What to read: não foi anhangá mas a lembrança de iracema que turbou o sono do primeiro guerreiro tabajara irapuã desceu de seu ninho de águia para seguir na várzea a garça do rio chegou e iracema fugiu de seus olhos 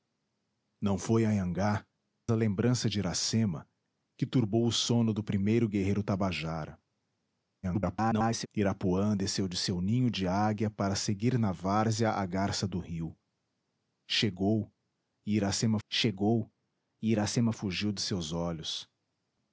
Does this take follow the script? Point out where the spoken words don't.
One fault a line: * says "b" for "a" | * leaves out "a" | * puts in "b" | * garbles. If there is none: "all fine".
* leaves out "mas"
* garbles
* puts in "chegou e iracema"